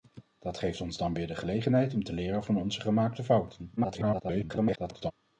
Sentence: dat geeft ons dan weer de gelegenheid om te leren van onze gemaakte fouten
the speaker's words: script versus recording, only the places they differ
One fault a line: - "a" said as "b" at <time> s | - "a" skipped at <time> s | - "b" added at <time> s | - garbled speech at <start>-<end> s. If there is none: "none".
- garbled speech at 3.8-5.1 s